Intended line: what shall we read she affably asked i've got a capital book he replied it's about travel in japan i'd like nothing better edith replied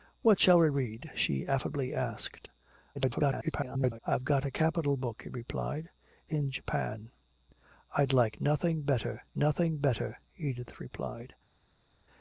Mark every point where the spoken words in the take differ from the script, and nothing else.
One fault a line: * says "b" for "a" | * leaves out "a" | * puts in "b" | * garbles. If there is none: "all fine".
* garbles
* leaves out "it's about travel"
* puts in "nothing better"